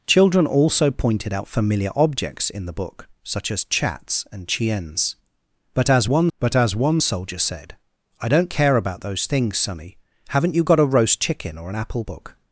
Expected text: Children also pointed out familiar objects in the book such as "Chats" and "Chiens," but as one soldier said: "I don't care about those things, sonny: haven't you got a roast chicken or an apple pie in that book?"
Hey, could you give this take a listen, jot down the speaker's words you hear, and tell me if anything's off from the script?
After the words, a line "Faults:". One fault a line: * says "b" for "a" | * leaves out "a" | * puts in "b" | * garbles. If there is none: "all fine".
Children also pointed out familiar objects in the book such as "Chats" and "Chiens," but as one but as one soldier said: "I don't care about those things, sonny: haven't you got a roast chicken or an apple book?"
Faults:
* puts in "but as one"
* leaves out "pie in that"